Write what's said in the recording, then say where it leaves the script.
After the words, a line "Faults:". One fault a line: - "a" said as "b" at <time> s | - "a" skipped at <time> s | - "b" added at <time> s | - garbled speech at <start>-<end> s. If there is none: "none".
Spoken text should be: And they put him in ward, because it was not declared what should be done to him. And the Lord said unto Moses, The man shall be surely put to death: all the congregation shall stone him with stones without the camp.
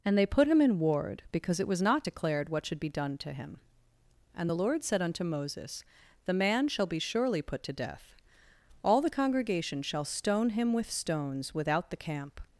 And they put him in ward, because it was not declared what should be done to him. And the Lord said unto Moses, The man shall be surely put to death: all the congregation shall stone him with stones without the camp.
Faults:
none